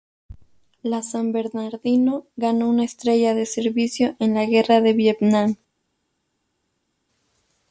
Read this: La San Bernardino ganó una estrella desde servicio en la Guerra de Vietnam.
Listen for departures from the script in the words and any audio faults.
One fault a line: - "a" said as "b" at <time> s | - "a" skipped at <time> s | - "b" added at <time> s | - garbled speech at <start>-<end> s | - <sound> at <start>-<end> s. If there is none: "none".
- "desde" said as "de" at 3.4 s